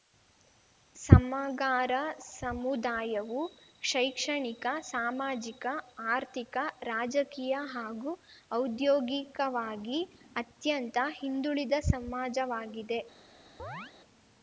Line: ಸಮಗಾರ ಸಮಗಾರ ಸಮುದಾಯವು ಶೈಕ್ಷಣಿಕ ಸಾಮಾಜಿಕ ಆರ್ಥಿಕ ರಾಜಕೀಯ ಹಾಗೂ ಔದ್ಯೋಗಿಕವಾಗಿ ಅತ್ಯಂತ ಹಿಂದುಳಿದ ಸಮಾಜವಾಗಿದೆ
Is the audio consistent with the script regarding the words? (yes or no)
no